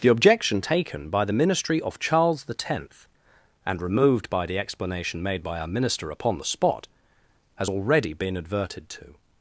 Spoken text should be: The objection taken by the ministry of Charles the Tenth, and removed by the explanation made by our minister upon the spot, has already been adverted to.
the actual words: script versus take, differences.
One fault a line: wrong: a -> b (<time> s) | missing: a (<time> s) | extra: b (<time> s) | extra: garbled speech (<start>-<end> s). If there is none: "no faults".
no faults